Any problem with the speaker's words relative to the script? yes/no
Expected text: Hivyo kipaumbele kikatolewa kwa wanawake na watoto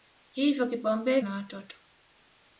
yes